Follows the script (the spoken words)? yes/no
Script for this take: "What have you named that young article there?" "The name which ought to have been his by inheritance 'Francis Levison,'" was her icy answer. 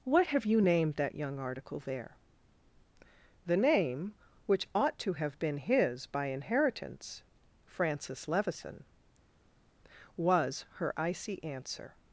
yes